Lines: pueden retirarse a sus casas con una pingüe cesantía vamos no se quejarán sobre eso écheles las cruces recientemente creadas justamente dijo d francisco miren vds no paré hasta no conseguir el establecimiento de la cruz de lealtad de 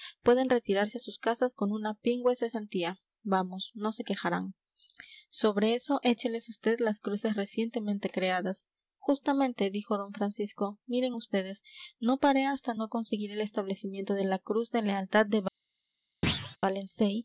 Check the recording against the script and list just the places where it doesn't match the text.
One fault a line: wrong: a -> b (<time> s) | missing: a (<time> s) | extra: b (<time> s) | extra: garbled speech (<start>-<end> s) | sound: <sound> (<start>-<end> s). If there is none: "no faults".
extra: vd (6.6 s)
sound: thud (16.2-16.6 s)